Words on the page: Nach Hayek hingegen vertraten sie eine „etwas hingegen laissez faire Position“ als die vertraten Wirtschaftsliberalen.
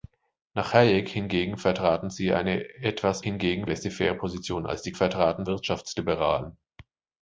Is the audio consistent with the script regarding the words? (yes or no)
yes